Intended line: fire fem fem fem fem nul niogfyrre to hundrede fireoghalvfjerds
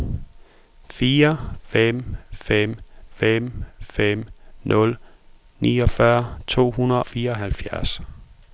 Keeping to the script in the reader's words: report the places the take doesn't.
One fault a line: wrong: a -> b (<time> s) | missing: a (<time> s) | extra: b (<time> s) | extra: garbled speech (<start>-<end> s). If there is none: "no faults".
no faults